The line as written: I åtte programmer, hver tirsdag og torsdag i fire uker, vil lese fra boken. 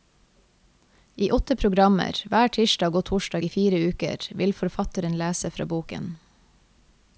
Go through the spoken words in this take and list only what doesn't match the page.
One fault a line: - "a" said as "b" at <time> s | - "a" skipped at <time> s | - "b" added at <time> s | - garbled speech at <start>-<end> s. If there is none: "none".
- "forfatteren" added at 4.6 s